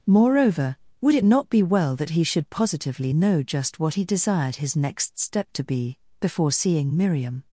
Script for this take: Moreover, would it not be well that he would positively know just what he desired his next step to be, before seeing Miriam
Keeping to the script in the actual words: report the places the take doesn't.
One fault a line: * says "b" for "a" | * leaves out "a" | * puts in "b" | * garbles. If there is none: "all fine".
* says "should" for "would"